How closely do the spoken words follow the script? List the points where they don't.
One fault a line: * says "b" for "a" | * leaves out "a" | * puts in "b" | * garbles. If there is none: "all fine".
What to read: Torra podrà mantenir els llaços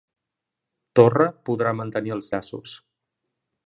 all fine